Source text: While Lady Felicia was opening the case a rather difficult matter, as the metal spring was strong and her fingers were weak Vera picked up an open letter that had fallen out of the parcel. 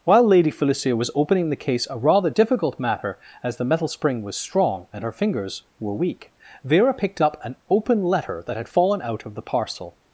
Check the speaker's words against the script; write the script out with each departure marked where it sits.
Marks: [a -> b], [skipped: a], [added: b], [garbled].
While Lady Felicia was opening the case a rather difficult matter, as the metal spring was strong and her fingers were weak Vera picked up an open letter that had fallen out of the parcel.